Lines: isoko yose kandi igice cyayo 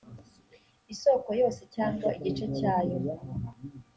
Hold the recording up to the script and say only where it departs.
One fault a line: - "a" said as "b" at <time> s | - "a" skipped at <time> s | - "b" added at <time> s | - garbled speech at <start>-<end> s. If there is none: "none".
- "kandi" said as "cyangwa" at 1.8 s